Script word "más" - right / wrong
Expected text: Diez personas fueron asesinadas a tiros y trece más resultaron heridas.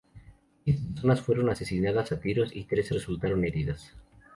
wrong